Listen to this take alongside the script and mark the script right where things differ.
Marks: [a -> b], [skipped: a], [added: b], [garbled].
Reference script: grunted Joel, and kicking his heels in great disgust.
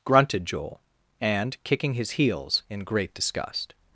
grunted Joel, and kicking his heels in great disgust.